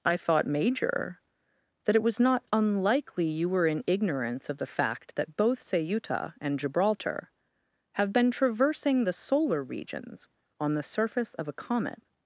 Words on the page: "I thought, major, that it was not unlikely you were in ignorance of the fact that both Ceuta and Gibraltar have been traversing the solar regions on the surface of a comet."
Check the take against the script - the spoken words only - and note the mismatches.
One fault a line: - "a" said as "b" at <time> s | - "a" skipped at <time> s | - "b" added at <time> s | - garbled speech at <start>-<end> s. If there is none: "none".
none